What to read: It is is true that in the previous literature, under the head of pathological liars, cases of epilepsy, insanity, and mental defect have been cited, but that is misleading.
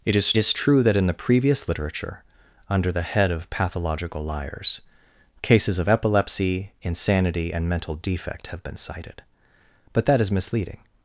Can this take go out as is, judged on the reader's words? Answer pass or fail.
pass